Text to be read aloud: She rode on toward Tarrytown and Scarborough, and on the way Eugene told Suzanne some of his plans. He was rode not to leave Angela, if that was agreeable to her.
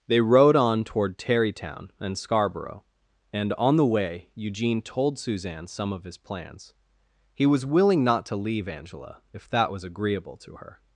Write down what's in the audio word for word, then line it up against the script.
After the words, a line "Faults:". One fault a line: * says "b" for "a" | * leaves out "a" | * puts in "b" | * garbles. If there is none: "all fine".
They rode on toward Tarrytown and Scarborough, and on the way Eugene told Suzanne some of his plans. He was willing not to leave Angela, if that was agreeable to her.
Faults:
* says "They" for "She"
* says "willing" for "rode"